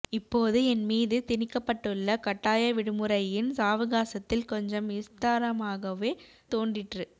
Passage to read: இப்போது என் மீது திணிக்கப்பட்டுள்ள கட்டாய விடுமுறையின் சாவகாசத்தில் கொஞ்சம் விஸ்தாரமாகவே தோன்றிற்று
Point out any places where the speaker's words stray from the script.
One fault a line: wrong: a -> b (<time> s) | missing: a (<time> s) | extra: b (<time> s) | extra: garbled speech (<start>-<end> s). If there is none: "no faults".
no faults